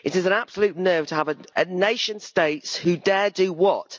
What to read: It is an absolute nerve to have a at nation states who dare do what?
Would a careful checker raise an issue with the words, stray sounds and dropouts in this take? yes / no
no